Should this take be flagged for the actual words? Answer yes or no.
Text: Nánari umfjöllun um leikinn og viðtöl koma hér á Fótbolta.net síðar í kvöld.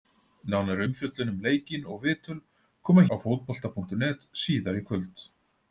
yes